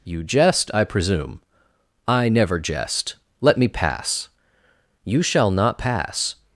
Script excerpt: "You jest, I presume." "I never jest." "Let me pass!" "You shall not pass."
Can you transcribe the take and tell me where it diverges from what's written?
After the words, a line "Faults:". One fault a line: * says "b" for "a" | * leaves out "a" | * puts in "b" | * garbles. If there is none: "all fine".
"You jest, I presume." "I never jest." "Let me pass!" "You shall not pass."
Faults:
all fine